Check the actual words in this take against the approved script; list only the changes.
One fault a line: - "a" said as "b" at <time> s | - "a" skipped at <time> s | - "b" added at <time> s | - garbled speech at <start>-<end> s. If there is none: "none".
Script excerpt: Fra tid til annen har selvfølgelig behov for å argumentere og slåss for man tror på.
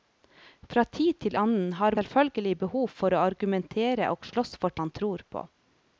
none